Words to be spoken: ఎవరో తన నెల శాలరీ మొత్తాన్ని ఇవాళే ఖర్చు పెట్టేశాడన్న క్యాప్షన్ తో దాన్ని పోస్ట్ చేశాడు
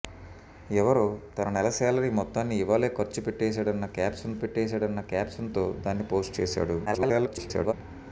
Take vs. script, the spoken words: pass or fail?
fail